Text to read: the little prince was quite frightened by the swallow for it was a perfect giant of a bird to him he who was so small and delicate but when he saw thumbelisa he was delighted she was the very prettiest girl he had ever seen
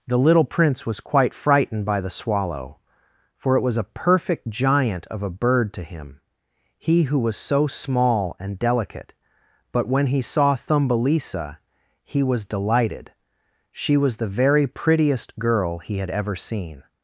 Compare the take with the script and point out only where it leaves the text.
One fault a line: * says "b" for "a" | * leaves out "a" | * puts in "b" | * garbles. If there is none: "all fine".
all fine